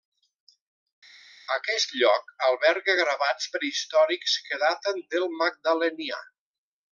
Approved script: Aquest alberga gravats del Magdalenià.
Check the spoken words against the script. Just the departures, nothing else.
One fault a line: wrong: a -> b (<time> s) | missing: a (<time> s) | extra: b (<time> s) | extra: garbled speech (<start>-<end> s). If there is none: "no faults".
extra: lloc (2.0 s)
extra: prehistòrics que daten (3.6 s)